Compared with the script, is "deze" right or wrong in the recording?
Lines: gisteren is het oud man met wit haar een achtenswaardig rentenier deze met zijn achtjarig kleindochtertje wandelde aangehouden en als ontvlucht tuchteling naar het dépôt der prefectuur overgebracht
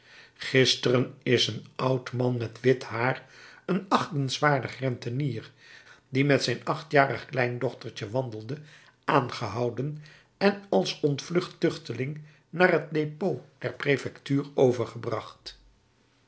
wrong